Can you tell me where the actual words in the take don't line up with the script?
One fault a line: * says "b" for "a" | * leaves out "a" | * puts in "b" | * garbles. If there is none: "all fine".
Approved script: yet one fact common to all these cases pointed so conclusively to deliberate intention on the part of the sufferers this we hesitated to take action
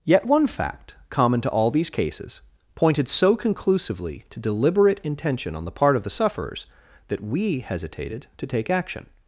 * says "that" for "this"